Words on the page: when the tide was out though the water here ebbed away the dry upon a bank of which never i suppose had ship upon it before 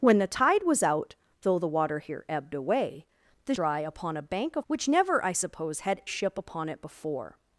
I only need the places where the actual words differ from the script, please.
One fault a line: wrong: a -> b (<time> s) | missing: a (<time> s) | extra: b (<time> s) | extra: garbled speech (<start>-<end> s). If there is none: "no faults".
no faults